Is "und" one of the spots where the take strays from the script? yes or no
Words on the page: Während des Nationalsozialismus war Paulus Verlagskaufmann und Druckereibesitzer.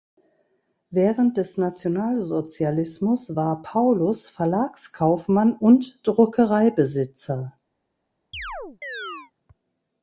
no